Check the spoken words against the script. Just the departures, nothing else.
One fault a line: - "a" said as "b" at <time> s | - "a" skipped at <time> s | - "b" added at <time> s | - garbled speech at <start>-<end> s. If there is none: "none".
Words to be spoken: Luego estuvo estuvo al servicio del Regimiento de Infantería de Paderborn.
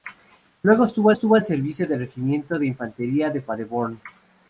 none